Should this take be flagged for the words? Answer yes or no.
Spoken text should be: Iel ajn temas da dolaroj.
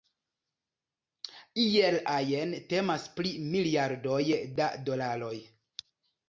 yes